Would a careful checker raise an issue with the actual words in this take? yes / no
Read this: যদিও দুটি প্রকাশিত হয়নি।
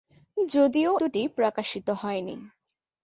no